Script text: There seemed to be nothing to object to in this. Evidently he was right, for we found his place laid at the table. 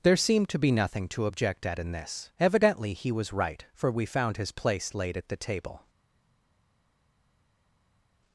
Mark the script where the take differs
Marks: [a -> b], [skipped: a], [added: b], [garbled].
There seemed to be nothing to object [to -> at] in this. Evidently he was right, for we found his place laid at the table.